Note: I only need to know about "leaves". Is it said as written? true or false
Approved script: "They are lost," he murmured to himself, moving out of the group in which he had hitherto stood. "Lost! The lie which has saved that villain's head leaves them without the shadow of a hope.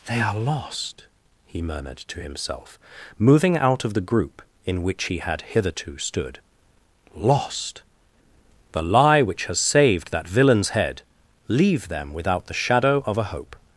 false